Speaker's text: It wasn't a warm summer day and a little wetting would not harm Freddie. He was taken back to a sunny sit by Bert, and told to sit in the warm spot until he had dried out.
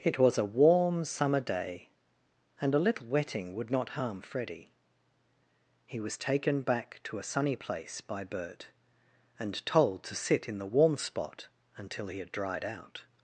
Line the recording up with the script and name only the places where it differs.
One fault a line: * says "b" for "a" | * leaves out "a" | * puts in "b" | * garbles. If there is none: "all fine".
* says "was" for "wasn't"
* says "place" for "sit"